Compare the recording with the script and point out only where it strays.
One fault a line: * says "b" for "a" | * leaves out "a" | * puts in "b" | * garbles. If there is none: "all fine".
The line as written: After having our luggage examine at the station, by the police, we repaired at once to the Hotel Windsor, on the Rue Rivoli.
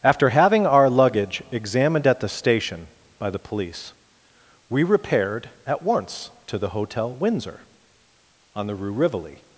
* says "examined" for "examine"